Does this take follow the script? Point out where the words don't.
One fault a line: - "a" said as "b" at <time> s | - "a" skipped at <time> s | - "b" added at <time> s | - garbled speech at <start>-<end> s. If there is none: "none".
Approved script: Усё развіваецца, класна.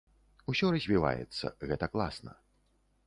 - "гэта" added at 1.7 s